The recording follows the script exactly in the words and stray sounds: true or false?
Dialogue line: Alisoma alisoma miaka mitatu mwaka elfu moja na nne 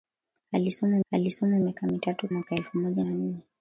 true